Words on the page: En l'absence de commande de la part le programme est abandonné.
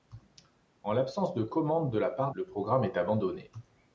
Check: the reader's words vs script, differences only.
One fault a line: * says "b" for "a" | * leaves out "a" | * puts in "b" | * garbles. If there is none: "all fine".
all fine